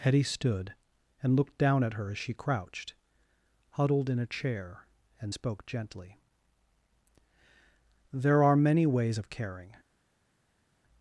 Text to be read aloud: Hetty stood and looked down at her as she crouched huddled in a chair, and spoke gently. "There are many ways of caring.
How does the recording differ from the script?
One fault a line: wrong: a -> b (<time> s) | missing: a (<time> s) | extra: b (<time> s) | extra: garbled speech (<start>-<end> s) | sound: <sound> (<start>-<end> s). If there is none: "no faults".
no faults